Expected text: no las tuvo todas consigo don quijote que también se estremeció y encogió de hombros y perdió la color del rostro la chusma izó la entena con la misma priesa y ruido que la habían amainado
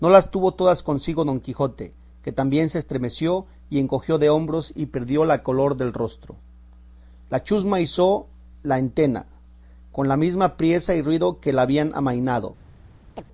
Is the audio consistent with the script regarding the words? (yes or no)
yes